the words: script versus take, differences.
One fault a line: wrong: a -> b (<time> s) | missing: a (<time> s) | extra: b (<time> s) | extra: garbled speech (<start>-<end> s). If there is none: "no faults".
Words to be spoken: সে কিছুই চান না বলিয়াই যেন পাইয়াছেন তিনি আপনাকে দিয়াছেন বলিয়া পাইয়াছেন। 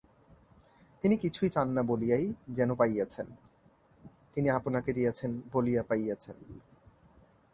wrong: সে -> তিনি (1.0 s)